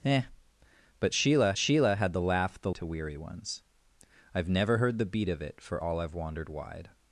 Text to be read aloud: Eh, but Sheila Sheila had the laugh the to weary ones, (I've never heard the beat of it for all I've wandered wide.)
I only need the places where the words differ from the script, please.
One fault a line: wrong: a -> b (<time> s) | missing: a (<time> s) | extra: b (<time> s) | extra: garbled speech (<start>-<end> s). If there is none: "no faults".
no faults